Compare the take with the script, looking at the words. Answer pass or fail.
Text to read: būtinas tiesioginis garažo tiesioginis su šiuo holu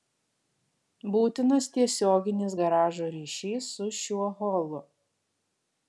fail